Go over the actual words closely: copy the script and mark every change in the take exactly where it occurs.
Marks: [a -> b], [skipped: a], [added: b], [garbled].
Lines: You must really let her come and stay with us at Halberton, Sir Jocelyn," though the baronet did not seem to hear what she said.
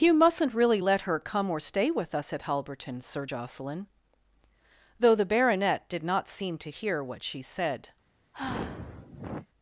You [must -> mustn't] really let her come [and -> or] stay with us at Halberton, Sir Jocelyn," though the baronet did not seem to hear what she said.